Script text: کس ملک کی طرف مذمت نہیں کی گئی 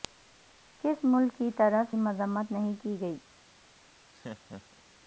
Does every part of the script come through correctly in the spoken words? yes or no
yes